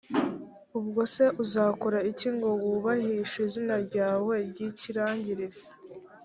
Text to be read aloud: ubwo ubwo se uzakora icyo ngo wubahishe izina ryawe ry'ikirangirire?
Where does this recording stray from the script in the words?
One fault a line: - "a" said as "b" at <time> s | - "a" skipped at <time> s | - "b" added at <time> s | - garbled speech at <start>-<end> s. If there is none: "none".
- "ubwo" skipped at 1.0 s
- "icyo" said as "iki" at 2.1 s